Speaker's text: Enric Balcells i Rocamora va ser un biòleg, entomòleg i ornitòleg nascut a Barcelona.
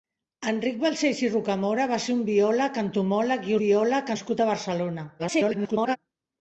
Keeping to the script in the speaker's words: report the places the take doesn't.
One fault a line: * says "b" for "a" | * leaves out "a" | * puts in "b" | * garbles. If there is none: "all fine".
* says "biòleg" for "ornitòleg"
* garbles